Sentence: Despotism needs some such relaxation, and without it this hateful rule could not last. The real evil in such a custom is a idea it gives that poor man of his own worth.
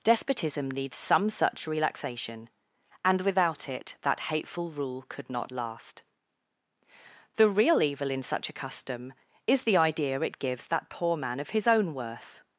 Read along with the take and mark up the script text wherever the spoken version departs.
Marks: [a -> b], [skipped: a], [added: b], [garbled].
Despotism needs some such relaxation, and without it [this -> that] hateful rule could not last. The real evil in such a custom is [a -> the] idea it gives that poor man of his own worth.